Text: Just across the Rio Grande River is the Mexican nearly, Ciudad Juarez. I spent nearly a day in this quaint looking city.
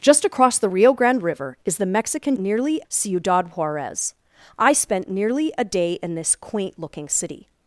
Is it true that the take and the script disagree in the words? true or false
false